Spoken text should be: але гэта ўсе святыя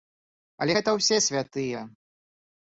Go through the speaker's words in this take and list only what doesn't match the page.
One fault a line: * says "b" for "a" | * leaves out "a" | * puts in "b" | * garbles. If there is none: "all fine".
all fine